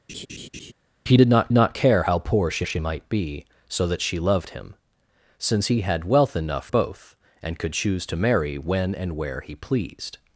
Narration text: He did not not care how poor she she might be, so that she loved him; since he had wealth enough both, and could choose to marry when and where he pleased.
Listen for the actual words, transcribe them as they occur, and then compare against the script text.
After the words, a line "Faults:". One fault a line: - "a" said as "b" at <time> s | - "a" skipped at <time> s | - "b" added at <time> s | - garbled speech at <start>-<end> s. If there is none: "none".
He did not not care how poor she she might be, so that she loved him; since he had wealth enough both, and could choose to marry when and where he pleased.
Faults:
none